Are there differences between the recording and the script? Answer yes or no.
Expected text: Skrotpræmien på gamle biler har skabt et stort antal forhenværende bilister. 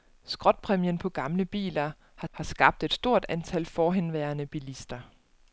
yes